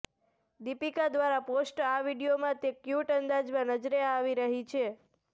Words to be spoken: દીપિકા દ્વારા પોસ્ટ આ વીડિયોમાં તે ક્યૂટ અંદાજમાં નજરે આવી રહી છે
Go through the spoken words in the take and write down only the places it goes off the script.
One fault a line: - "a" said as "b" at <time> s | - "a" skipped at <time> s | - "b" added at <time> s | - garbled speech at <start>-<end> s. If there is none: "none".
none